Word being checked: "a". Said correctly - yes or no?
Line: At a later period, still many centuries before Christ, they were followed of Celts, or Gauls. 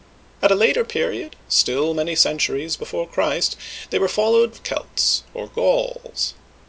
yes